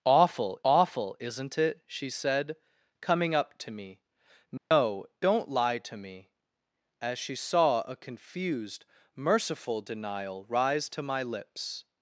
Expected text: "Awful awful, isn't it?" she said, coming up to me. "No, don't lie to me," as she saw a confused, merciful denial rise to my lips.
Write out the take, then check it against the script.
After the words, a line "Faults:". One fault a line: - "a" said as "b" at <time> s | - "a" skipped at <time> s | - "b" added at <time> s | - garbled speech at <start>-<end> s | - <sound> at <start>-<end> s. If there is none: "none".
"Awful awful, isn't it?" she said, coming up to me. "No, don't lie to me," as she saw a confused, merciful denial rise to my lips.
Faults:
- dropout at 4.6-4.7 s